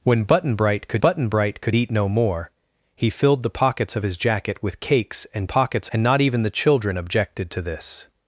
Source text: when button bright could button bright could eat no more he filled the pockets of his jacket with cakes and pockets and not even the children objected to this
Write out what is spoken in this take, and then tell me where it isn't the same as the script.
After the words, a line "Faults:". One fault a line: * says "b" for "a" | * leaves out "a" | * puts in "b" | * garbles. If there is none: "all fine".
when button bright could button bright could eat no more he filled the pockets of his jacket with cakes and pockets and not even the children objected to this
Faults:
all fine